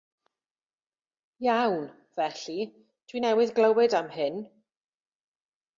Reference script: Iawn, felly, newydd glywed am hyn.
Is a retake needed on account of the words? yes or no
yes